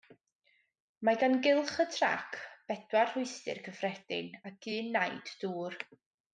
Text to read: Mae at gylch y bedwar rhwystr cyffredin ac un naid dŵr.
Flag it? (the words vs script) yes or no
yes